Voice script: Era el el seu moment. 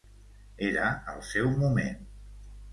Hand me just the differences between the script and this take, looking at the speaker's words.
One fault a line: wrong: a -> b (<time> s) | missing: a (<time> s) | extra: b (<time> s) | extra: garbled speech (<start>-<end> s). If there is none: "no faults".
missing: el (1.2 s)